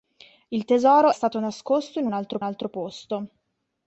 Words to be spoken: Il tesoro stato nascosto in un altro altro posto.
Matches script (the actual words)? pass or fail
pass